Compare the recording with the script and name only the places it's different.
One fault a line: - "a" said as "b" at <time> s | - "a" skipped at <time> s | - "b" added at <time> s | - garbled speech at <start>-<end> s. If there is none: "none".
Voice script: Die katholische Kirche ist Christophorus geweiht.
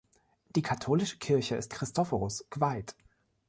none